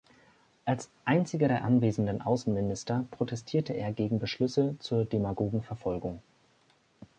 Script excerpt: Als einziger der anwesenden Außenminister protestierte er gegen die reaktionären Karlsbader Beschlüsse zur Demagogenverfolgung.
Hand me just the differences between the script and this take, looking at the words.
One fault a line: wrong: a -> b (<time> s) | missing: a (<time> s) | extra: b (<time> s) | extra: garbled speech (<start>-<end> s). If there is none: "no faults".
missing: die reaktionären Karlsbader (4.2 s)